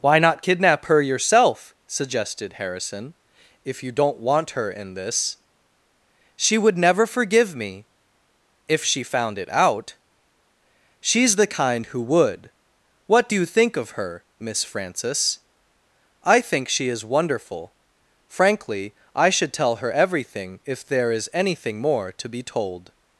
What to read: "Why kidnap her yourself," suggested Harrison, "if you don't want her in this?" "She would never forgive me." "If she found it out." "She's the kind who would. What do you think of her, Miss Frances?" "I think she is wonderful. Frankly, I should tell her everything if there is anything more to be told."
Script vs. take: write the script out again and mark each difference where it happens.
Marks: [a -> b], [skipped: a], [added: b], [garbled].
"Why [added: not] kidnap her yourself," suggested Harrison, "if you don't want her in this?" "She would never forgive me." "If she found it out." "She's the kind who would. What do you think of her, Miss Frances?" "I think she is wonderful. Frankly, I should tell her everything if there is anything more to be told."